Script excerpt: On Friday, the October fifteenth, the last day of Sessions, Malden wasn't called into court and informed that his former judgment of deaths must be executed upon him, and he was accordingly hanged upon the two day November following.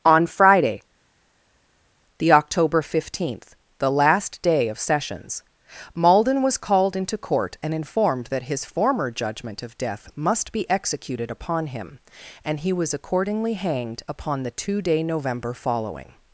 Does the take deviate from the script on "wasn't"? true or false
true